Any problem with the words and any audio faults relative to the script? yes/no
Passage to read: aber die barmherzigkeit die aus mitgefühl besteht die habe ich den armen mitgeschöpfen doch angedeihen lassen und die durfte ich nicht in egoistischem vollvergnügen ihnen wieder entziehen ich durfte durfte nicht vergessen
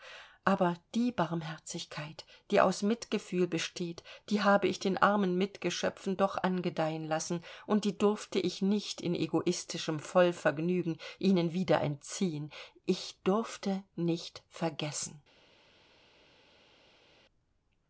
yes